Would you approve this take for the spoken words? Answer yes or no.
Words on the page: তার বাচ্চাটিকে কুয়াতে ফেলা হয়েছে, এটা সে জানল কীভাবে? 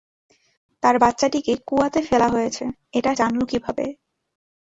no